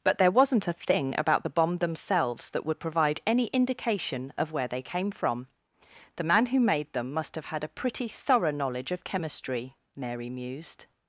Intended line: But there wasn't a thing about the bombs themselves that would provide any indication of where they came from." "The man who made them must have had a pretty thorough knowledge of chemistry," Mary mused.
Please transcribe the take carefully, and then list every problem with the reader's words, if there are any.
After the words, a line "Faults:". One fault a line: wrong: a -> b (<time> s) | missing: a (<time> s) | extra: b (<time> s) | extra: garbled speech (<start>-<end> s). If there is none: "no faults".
But there wasn't a thing about the bomb themselves that would provide any indication of where they came from." "The man who made them must have had a pretty thorough knowledge of chemistry," Mary mused.
Faults:
wrong: bombs -> bomb (1.5 s)